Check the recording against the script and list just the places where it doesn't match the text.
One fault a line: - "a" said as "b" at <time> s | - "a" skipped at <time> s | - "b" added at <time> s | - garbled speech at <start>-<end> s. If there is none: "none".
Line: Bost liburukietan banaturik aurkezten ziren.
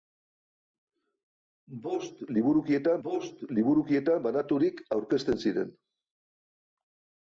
- "bost liburukietan" added at 3.0 s